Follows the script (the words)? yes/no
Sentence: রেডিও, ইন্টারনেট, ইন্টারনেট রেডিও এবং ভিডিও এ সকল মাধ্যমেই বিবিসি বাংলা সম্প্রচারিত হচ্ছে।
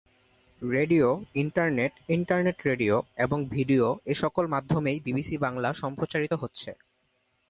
yes